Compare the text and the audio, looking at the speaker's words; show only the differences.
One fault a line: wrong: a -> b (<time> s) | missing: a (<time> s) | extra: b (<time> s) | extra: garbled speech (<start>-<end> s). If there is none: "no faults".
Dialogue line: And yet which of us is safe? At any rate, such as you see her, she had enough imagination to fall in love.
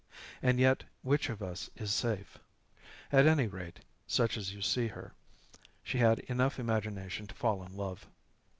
no faults